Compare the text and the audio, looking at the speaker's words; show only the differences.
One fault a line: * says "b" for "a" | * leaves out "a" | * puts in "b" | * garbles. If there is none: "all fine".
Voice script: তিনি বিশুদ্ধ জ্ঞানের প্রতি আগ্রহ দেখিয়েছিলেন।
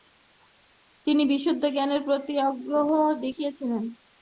all fine